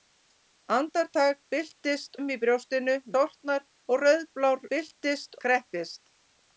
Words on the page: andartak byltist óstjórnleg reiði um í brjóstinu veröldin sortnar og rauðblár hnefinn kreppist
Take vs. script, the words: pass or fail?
fail